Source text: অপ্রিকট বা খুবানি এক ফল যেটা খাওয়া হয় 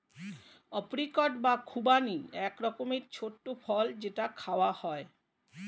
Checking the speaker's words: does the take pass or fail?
fail